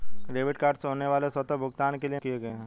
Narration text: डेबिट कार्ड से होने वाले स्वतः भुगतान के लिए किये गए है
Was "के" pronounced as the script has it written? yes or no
yes